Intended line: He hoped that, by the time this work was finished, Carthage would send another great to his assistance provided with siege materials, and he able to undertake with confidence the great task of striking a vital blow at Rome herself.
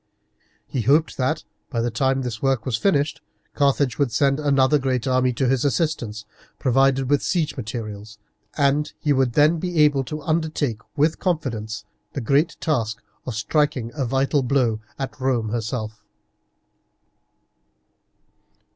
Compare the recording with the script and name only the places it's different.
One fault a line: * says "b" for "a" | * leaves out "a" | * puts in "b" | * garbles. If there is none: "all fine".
* puts in "army"
* puts in "would then be"